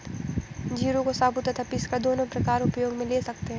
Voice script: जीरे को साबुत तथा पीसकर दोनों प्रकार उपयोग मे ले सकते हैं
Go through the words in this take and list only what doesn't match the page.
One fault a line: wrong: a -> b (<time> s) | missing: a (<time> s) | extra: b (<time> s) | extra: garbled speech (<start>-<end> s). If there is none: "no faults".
no faults